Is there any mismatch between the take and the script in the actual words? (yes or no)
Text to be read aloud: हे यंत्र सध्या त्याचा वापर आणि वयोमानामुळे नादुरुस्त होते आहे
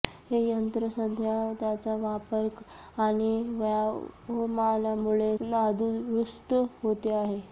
no